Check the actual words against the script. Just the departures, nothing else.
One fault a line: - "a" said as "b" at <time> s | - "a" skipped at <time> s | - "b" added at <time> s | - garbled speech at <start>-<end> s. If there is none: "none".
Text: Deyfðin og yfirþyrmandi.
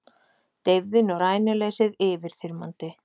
- "rænuleysið" added at 1.2 s